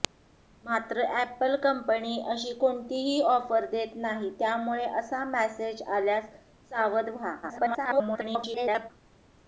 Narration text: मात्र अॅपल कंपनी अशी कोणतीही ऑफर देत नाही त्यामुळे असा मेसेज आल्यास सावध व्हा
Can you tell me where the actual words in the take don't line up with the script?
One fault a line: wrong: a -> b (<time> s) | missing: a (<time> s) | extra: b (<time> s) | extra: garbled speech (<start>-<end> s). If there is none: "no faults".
extra: garbled speech (7.4-8.9 s)